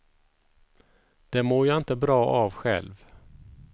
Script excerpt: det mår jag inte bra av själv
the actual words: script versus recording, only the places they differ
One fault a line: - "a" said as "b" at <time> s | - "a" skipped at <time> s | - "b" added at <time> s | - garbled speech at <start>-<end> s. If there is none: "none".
none